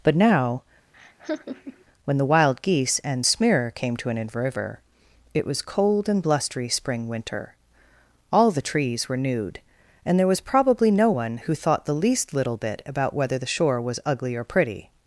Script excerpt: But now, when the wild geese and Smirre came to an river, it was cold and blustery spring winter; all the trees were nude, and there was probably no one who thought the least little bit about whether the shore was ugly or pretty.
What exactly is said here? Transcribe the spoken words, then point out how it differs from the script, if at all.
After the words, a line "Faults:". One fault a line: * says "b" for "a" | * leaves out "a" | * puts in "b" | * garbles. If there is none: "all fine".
But now, when the wild geese and Smirre came to an river, it was cold and blustery spring winter; all the trees were nude, and there was probably no one who thought the least little bit about whether the shore was ugly or pretty.
Faults:
all fine